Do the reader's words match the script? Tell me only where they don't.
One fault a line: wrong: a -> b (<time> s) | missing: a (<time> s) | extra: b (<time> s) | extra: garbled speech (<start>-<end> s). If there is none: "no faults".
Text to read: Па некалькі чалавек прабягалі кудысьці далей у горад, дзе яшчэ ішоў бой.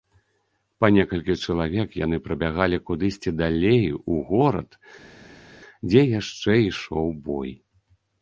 extra: яны (2.0 s)